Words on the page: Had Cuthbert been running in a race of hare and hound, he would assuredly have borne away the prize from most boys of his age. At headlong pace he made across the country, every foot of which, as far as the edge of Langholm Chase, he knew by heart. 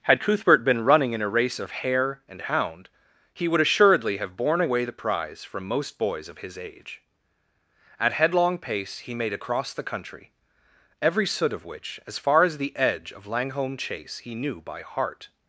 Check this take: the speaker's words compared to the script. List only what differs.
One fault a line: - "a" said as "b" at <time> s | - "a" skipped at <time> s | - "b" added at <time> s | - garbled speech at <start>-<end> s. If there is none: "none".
- "foot" said as "soot" at 11.3 s